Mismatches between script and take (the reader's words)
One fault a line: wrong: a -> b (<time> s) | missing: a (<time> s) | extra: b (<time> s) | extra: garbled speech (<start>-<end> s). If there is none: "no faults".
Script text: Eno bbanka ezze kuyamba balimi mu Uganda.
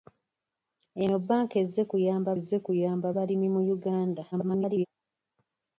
extra: ezze kuyamba (2.4 s)
extra: garbled speech (4.3-4.9 s)